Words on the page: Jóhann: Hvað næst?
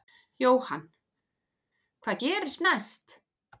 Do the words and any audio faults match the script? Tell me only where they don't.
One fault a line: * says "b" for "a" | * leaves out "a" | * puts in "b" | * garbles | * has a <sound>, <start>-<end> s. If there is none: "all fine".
* puts in "gerist"